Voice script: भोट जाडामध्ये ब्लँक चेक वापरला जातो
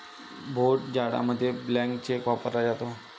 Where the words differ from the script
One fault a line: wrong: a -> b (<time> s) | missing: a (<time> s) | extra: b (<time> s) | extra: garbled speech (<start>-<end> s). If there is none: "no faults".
no faults